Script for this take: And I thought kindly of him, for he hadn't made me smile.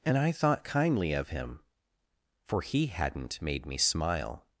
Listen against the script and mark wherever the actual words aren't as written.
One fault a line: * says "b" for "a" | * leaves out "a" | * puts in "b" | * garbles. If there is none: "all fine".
all fine